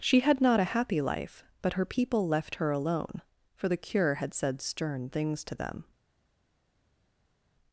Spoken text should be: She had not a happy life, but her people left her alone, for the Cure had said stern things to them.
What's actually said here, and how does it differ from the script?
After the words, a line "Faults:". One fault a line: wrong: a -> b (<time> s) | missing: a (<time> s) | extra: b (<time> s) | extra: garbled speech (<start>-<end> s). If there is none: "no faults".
She had not a happy life, but her people left her alone, for the Cure had said stern things to them.
Faults:
no faults